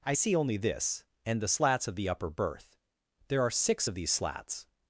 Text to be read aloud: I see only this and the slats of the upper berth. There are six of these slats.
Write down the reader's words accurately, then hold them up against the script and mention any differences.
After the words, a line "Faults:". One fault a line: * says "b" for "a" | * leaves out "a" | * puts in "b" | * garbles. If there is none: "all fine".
I see only this and the slats of the upper berth. There are six of these slats.
Faults:
all fine